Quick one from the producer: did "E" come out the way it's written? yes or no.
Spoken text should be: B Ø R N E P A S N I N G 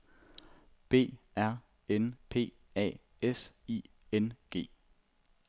no